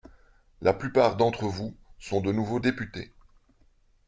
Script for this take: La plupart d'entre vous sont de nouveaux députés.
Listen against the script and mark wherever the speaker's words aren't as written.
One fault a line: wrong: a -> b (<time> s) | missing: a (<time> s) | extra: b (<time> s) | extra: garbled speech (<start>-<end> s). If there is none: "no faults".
no faults